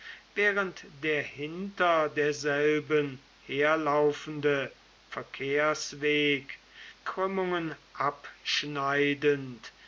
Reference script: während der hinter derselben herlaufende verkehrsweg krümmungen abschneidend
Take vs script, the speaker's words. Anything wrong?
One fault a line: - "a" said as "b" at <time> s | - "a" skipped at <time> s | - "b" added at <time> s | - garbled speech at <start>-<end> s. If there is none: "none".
none